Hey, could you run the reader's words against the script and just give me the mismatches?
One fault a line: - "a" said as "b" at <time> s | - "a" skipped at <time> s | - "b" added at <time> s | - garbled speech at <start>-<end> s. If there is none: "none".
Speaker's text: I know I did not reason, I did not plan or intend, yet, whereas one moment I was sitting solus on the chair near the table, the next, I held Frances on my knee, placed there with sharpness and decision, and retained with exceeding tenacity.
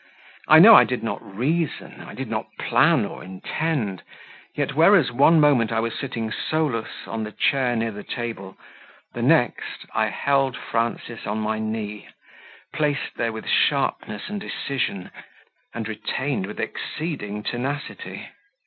none